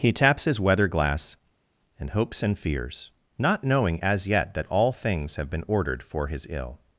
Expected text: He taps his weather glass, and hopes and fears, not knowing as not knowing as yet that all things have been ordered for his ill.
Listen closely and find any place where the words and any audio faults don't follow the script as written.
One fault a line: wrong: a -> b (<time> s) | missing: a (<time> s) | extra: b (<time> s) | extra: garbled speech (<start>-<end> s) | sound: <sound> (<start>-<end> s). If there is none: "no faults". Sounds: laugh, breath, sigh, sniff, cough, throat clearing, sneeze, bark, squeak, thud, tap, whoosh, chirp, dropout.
missing: not knowing as (4.3 s)